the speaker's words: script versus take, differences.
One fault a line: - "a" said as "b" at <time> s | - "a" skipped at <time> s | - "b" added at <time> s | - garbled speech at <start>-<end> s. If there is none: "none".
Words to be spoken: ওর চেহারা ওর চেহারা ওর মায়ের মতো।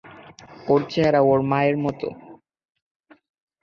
- "চেহারা ওর" skipped at 1.4 s